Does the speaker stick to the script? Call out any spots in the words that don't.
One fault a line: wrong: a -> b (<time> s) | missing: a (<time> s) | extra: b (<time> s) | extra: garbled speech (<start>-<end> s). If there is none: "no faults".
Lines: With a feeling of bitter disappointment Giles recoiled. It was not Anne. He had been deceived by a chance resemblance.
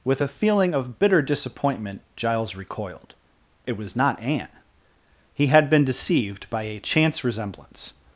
no faults